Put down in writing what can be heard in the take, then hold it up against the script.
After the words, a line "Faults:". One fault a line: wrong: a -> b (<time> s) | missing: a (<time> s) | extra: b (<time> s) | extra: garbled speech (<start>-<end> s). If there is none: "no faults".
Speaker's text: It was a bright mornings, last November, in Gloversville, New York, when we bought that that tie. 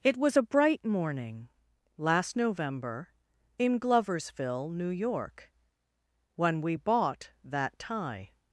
It was a bright morning, last November, in Gloversville, New York, when we bought that tie.
Faults:
wrong: mornings -> morning (0.8 s)
missing: that (7.8 s)